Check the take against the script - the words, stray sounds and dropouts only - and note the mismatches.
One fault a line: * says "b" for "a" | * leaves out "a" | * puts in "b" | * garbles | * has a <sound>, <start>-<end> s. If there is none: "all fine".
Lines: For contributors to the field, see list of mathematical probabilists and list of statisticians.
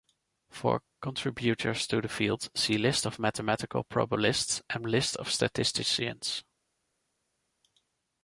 all fine